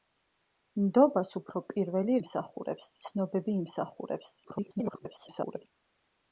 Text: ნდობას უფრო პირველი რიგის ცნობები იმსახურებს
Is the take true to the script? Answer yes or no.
no